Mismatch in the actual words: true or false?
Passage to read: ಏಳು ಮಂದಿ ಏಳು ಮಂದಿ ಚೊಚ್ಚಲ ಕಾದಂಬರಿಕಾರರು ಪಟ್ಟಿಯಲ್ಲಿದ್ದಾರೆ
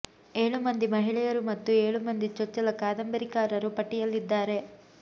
true